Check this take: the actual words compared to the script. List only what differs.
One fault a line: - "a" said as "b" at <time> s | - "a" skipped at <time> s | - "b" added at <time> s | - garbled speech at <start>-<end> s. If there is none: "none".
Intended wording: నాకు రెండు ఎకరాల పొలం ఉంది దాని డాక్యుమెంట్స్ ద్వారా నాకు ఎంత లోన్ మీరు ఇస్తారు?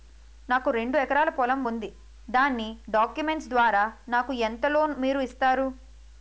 none